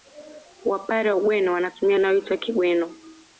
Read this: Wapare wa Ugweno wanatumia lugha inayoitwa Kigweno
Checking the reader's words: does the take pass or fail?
fail